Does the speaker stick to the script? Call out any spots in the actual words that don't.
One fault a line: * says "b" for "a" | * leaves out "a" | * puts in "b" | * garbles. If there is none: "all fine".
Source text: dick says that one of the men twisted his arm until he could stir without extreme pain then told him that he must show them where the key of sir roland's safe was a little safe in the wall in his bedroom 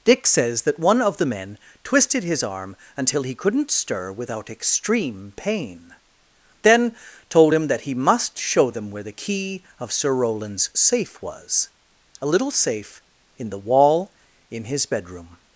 * says "couldn't" for "could"